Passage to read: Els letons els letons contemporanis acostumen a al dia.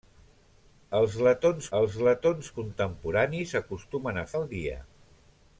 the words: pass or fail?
pass